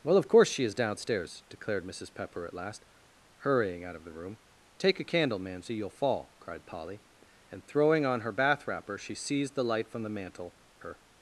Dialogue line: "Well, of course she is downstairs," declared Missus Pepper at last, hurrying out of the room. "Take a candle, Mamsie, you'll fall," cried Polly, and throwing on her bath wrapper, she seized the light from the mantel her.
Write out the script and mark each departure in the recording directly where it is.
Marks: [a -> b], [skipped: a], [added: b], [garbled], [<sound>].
"Well, of course she is downstairs," declared Missus Pepper at last, hurrying out of the room. "Take a candle, Mamsie, you'll fall," cried Polly, and throwing on her bath wrapper, she seized the light from the mantel her.